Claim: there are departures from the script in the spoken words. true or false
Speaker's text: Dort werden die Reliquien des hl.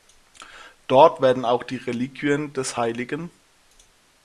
true